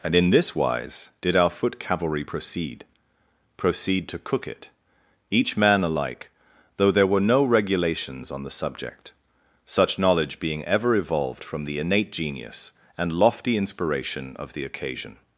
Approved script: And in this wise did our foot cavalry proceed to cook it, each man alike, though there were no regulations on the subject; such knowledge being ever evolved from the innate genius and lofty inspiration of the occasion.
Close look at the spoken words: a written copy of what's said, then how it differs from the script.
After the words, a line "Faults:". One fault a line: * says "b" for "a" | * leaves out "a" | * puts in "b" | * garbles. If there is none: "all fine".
And in this wise did our foot cavalry proceed proceed to cook it, each man alike, though there were no regulations on the subject; such knowledge being ever evolved from the innate genius and lofty inspiration of the occasion.
Faults:
* puts in "proceed"